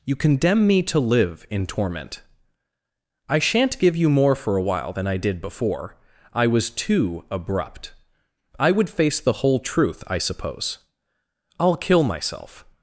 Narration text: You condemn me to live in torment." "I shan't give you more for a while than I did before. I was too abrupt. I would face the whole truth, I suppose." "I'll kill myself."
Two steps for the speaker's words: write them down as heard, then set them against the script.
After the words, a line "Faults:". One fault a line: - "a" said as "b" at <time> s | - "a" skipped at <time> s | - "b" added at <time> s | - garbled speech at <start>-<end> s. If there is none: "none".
You condemn me to live in torment." "I shan't give you more for a while than I did before. I was too abrupt. I would face the whole truth, I suppose." "I'll kill myself."
Faults:
none